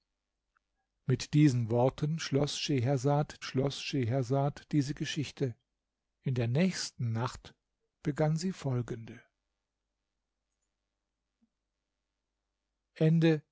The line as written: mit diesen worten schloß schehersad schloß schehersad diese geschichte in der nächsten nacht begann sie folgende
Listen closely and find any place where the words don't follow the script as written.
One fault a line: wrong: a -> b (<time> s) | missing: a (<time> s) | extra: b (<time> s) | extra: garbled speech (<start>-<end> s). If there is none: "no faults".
no faults